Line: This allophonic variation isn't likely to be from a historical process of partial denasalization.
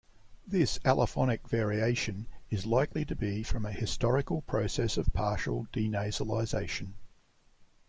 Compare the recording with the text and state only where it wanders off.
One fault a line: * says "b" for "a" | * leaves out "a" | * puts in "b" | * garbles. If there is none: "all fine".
* says "is" for "isn't"